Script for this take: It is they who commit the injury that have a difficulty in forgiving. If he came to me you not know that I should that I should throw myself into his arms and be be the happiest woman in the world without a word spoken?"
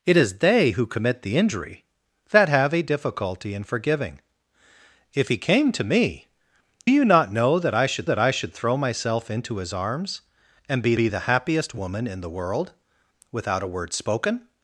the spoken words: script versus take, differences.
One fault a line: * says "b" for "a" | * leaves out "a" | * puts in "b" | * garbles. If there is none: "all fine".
all fine